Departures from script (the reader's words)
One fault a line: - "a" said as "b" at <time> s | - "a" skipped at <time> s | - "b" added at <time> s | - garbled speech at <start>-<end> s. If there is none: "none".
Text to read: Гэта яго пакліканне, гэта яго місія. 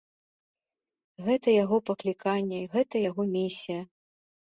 none